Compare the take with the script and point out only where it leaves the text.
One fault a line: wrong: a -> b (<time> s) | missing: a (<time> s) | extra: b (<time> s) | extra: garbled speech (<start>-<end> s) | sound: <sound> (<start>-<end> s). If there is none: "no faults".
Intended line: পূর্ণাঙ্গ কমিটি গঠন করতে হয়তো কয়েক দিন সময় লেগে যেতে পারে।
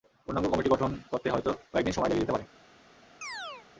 sound: chirp (3.2-3.7 s)